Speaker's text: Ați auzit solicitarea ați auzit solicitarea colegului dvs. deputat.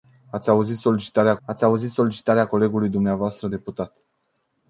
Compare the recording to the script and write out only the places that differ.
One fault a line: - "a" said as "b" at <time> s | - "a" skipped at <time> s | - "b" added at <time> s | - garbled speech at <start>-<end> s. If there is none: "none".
none